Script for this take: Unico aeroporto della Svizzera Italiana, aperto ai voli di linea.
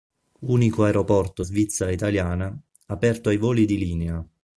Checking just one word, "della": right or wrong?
wrong